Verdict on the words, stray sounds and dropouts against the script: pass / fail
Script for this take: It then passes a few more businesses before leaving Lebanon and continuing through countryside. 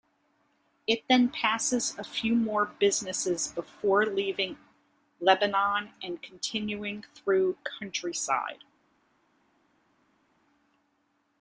pass